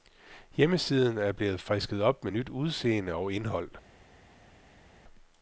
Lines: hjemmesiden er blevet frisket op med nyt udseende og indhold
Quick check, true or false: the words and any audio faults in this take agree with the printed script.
true